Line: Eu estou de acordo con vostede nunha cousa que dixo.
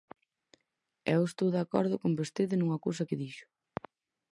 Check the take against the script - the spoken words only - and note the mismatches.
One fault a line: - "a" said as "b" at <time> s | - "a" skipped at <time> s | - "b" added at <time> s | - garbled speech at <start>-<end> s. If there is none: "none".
none